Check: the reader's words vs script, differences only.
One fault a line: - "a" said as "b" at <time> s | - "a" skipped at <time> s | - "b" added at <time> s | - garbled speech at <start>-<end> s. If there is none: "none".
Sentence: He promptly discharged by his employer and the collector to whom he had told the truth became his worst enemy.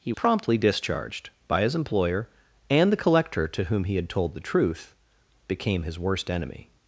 none